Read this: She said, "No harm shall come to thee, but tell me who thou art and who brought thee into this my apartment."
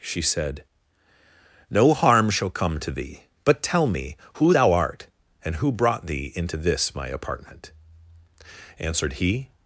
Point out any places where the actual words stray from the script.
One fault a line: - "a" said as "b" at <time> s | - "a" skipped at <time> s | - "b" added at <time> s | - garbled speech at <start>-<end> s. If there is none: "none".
- "Answered he" added at 8.8 s